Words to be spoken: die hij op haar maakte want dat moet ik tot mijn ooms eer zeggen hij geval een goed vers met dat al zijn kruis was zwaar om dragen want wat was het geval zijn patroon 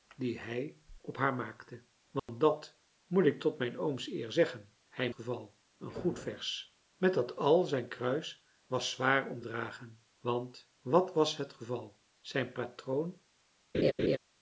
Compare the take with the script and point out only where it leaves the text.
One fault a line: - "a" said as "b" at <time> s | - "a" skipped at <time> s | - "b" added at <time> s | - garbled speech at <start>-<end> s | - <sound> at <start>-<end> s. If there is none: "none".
- dropout at 2.2-2.3 s
- laugh at 13.7-14.2 s